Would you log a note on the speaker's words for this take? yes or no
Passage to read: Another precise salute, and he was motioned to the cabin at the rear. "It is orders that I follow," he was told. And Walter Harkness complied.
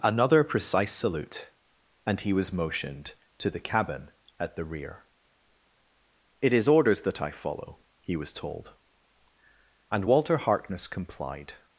no